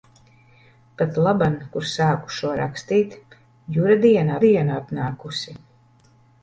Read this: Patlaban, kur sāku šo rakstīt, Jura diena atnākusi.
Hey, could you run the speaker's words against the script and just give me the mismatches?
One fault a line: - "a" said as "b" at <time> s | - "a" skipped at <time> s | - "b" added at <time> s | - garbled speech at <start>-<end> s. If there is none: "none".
- "diena" added at 4.4 s